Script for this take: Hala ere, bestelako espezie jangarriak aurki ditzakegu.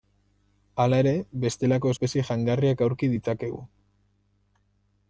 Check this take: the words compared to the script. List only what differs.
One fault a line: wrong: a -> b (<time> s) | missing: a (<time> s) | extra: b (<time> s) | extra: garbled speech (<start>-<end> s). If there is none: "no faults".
no faults